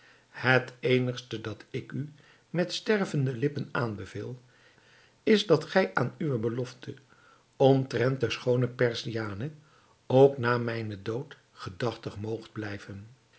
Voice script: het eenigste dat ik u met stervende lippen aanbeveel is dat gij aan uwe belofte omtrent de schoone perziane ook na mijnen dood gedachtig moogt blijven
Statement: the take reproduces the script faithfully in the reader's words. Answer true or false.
true